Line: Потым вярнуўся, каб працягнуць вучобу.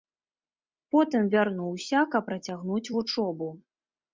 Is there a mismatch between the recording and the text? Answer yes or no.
no